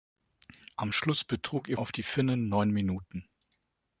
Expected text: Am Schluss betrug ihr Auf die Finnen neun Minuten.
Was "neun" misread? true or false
false